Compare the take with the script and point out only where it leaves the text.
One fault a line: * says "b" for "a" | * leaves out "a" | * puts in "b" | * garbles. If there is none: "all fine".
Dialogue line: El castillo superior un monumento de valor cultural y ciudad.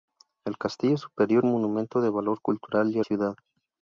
all fine